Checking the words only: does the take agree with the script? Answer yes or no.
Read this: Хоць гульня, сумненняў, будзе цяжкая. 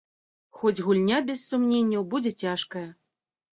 no